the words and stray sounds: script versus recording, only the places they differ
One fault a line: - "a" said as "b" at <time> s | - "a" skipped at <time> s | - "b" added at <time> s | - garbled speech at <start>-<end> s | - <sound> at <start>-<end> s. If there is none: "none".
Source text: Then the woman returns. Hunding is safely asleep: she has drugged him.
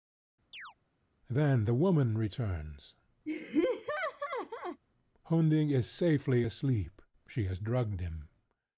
- chirp at 0.5-0.7 s
- laugh at 3.3-4.8 s